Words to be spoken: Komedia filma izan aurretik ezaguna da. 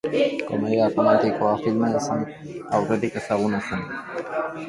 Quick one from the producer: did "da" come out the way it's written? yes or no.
no